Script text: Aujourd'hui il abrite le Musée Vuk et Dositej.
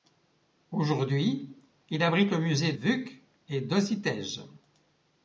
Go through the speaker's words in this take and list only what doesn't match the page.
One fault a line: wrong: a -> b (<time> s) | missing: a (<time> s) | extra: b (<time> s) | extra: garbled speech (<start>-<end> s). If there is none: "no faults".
no faults